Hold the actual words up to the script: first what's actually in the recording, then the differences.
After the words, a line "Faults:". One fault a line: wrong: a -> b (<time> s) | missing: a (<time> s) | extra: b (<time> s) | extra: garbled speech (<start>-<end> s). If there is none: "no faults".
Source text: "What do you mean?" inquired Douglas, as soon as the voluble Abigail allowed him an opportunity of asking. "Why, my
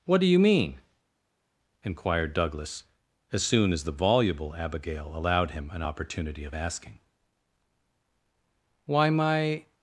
"What do you mean?" inquired Douglas, as soon as the voluble Abigail allowed him an opportunity of asking. "Why, my
Faults:
no faults